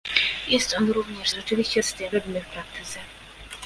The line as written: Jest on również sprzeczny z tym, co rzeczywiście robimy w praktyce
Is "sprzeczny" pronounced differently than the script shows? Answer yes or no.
yes